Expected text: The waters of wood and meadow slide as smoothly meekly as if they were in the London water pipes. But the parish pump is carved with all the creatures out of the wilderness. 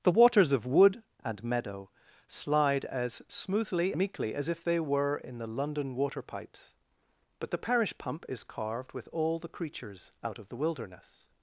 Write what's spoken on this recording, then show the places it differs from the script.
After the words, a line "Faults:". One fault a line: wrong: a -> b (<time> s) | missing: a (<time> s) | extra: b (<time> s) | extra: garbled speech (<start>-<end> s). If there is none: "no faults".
The waters of wood and meadow slide as smoothly meekly as if they were in the London water pipes. But the parish pump is carved with all the creatures out of the wilderness.
Faults:
no faults